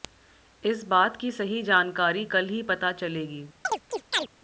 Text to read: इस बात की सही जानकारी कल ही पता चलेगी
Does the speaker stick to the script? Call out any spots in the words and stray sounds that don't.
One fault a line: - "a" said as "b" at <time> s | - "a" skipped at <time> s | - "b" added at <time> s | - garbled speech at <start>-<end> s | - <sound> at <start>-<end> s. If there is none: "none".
- chirp at 3.6-4.3 s